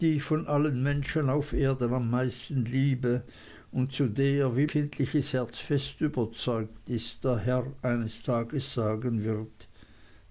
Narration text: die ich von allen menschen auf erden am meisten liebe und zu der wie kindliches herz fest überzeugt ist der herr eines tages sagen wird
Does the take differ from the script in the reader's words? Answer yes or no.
no